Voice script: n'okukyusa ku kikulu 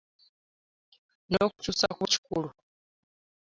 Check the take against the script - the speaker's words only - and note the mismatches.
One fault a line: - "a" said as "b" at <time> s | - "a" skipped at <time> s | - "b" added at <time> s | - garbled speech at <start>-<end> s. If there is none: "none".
none